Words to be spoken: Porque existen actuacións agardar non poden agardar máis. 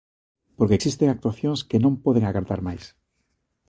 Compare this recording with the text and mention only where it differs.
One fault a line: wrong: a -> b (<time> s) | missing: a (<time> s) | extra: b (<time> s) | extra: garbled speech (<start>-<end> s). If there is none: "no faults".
wrong: agardar -> que (1.7 s)